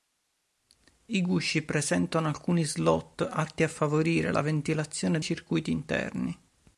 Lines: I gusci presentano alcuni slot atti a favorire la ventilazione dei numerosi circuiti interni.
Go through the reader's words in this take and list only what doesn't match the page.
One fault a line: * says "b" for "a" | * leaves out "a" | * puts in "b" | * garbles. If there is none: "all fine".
* leaves out "dei numerosi"